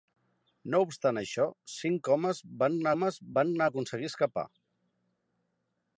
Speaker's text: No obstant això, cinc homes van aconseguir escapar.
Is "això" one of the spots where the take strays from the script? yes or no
no